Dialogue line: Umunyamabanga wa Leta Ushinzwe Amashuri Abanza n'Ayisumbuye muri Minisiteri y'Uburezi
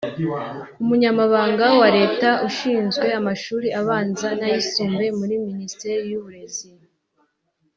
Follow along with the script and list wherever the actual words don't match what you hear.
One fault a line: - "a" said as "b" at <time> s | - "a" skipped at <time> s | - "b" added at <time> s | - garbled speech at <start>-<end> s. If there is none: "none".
none